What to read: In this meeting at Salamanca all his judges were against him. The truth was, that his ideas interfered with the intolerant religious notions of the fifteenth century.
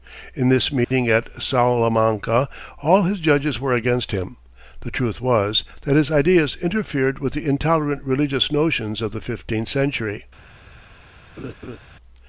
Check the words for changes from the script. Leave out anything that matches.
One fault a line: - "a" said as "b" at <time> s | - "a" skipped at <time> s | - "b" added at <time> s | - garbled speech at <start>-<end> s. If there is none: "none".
none